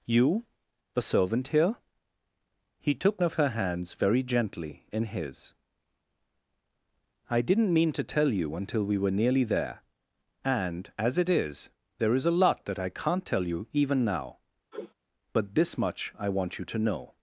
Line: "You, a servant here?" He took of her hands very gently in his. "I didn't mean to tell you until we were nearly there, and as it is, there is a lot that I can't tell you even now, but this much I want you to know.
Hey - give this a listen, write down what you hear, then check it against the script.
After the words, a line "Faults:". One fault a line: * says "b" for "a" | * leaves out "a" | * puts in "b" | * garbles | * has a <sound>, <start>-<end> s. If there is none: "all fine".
"You, a servant here?" He took of her hands very gently in his. "I didn't mean to tell you until we were nearly there, and as it is, there is a lot that I can't tell you even now, but this much I want you to know.
Faults:
* has a sniff, 14.7-14.9 s